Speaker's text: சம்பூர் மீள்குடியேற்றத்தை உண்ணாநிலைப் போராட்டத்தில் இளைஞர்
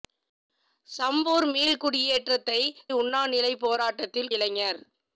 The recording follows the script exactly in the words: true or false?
true